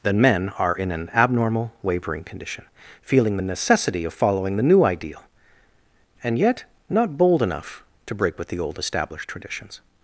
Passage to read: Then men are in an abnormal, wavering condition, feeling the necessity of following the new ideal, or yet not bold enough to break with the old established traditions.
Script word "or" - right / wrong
wrong